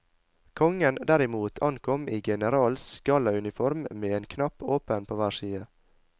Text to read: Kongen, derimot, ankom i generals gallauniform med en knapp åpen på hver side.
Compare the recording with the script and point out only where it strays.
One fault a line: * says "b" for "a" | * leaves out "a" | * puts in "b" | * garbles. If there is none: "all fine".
all fine